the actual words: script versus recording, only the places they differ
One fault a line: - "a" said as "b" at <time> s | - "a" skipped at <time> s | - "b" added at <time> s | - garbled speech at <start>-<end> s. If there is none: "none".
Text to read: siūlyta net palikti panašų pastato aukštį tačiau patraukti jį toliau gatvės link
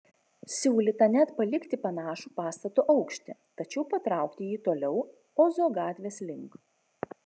- "ozo" added at 5.5 s